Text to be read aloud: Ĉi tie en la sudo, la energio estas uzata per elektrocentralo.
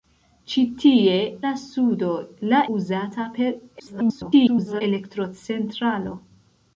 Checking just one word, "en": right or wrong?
wrong